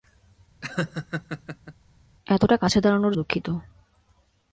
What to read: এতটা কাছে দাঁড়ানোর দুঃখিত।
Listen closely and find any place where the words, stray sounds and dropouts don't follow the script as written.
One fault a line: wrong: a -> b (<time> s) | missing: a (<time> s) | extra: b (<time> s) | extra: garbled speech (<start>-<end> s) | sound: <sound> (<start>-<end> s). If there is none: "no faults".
sound: laugh (0.6-1.7 s)